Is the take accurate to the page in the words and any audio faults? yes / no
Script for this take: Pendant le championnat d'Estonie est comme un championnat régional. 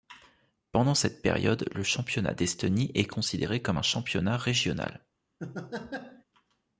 no